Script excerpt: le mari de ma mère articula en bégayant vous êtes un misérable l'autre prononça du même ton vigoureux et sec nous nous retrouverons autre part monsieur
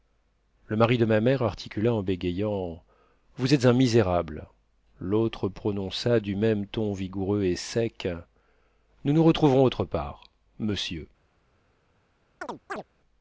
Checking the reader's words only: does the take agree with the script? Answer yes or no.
yes